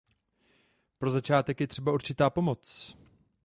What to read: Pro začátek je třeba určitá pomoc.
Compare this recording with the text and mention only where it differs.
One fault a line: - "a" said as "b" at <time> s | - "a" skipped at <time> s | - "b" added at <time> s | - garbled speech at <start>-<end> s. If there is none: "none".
none